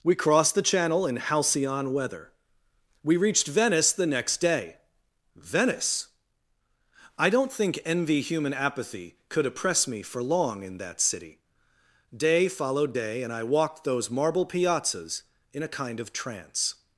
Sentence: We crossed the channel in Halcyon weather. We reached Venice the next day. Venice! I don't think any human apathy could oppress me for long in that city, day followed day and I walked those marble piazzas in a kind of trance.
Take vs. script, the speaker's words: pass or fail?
fail